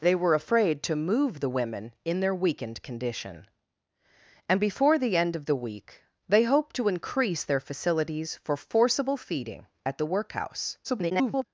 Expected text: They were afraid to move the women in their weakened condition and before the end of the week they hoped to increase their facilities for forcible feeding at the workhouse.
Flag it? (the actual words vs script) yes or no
yes